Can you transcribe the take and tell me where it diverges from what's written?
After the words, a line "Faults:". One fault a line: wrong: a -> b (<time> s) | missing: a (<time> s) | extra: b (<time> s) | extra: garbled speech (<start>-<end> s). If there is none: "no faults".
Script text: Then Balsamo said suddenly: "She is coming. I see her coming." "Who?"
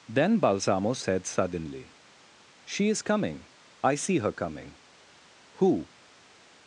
Then Balsamo said suddenly: "She is coming. I see her coming." "Who?"
Faults:
no faults